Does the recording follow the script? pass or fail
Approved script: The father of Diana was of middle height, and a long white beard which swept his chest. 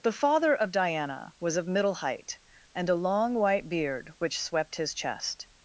pass